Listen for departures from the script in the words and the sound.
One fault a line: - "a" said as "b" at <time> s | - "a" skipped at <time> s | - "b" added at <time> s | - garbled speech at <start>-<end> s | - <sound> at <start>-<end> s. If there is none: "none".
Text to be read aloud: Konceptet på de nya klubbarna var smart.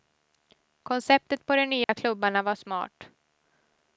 - dropout at 1.8-1.9 s